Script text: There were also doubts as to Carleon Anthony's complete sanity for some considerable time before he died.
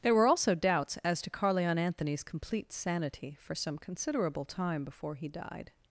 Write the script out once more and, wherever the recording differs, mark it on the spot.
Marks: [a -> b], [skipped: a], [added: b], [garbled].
There were also doubts as to Carleon Anthony's complete sanity for some considerable time before he died.